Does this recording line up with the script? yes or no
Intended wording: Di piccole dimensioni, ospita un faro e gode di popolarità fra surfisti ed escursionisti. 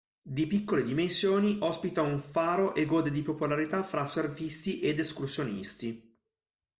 yes